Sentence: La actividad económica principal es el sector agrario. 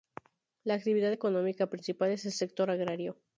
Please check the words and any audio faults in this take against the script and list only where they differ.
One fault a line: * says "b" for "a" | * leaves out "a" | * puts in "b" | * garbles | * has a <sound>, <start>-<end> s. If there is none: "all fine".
all fine